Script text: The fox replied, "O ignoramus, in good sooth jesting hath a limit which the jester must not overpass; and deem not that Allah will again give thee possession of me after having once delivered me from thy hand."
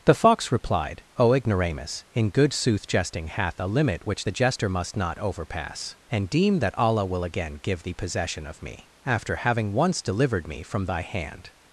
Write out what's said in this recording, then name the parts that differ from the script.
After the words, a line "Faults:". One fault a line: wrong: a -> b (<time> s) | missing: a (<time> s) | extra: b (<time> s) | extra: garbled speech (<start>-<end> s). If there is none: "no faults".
The fox replied, "O ignoramus, in good sooth jesting hath a limit which the jester must not overpass; and deem that Allah will again give thee possession of me after having once delivered me from thy hand."
Faults:
missing: not (6.6 s)